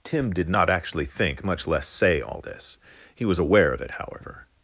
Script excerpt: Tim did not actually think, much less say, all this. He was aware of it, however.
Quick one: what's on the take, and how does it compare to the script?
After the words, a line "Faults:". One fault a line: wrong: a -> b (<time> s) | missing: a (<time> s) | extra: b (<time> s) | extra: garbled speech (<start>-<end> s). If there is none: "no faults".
Tim did not actually think, much less say, all this. He was aware of it, however.
Faults:
no faults